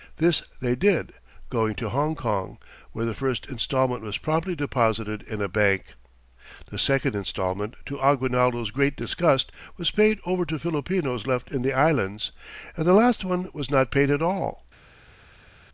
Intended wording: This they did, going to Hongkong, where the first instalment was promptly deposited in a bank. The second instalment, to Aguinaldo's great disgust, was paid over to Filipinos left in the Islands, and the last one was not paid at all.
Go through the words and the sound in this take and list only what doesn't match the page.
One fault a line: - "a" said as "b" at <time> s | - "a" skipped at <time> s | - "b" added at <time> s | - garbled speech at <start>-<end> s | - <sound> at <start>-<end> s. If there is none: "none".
none